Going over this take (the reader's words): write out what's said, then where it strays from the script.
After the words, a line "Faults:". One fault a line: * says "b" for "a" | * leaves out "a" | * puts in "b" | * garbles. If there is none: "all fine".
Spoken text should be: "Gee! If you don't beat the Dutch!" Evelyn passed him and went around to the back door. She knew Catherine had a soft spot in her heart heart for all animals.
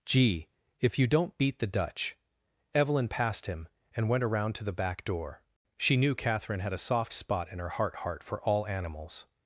"Gee! If you don't beat the Dutch!" Evelyn passed him and went around to the back door. She knew Catherine had a soft spot in her heart heart for all animals.
Faults:
all fine